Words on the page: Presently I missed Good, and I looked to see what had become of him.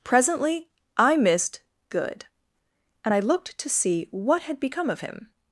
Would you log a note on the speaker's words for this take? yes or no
no